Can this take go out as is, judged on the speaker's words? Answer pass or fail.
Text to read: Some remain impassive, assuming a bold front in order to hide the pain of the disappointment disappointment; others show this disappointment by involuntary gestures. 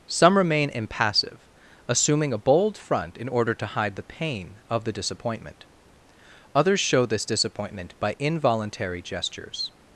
fail